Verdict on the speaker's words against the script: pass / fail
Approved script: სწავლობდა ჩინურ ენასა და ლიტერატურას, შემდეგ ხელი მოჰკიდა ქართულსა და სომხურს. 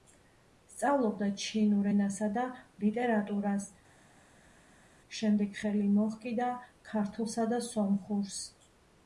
pass